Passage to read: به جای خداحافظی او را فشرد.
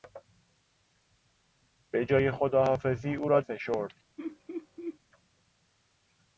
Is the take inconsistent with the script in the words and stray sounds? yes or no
yes